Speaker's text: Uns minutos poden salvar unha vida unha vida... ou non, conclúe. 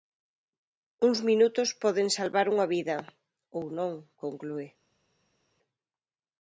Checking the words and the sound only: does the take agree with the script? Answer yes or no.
no